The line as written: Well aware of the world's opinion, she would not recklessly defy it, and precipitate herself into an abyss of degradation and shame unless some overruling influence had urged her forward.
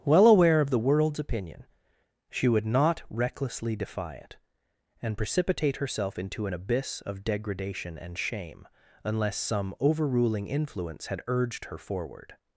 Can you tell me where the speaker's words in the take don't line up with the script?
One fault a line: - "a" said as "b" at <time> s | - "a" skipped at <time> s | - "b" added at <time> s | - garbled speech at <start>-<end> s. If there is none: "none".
none